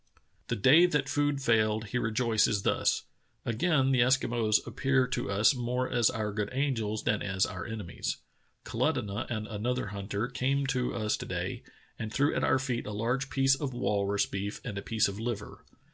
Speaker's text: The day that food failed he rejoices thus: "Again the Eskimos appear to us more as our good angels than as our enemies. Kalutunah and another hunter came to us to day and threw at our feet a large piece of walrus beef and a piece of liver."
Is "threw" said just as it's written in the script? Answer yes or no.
yes